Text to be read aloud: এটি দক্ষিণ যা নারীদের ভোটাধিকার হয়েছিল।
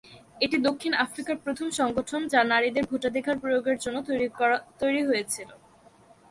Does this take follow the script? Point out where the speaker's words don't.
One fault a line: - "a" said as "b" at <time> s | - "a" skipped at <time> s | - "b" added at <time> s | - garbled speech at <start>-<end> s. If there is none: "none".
- "আফ্রিকার প্রথম সংগঠন" added at 1.1 s
- "প্রয়োগের জন্য তৈরি" added at 3.4 s